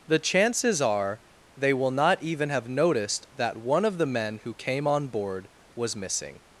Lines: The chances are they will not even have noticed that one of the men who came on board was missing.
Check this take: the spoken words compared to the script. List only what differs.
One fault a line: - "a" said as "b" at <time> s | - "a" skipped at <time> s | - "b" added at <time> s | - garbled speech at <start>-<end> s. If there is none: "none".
none